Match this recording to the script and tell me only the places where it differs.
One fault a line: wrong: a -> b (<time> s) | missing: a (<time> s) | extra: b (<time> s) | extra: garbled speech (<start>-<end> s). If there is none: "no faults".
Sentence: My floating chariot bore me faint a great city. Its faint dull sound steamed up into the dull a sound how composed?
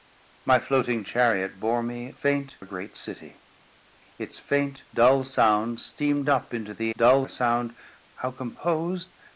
no faults